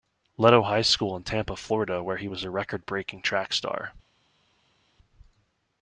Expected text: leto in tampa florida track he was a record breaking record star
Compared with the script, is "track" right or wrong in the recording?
wrong